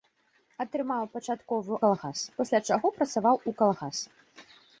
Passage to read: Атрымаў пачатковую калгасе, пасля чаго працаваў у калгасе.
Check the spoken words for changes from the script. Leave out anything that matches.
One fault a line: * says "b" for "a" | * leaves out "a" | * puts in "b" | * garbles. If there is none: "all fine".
all fine